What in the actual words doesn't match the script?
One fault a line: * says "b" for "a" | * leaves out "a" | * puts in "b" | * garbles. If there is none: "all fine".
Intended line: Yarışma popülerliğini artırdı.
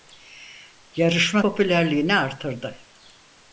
all fine